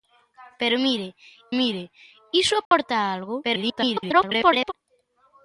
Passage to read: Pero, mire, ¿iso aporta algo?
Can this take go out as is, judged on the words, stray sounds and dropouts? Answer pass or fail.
fail